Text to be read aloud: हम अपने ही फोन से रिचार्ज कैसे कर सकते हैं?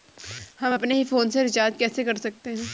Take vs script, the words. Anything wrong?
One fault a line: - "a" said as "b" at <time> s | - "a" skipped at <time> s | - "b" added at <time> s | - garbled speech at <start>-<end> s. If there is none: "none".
none